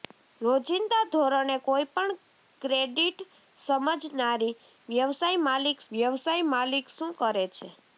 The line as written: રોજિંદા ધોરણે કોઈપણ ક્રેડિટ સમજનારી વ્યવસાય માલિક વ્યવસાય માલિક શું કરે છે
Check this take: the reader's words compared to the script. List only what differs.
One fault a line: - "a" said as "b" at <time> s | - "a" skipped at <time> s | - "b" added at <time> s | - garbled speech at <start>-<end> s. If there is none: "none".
none